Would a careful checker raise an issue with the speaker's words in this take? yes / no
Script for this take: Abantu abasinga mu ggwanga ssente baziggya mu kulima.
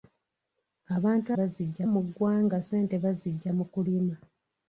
yes